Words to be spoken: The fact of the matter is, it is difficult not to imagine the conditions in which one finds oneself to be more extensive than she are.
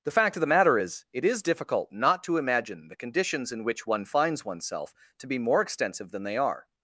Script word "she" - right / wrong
wrong